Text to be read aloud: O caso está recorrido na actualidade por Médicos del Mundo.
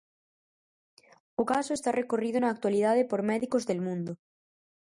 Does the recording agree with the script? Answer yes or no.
yes